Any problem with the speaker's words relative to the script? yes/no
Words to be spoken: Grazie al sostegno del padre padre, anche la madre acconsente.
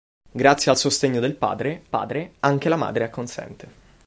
no